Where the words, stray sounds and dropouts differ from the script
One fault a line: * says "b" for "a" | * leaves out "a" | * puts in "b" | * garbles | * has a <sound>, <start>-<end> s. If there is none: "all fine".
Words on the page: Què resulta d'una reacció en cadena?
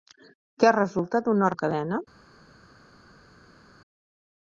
* leaves out "reacció"